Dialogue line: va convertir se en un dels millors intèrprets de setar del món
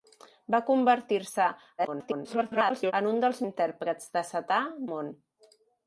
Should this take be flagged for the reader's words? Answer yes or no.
yes